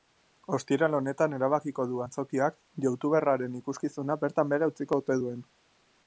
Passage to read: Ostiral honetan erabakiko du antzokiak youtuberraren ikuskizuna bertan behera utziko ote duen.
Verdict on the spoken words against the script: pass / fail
pass